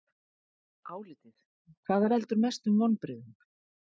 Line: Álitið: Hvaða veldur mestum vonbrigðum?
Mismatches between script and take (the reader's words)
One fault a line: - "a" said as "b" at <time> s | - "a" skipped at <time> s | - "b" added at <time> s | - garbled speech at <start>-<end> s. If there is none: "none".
none